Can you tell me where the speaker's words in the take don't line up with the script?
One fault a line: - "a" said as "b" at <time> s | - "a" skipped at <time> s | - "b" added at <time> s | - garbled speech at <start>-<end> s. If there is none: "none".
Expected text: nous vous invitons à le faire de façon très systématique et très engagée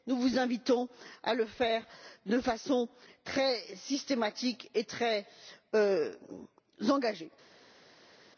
none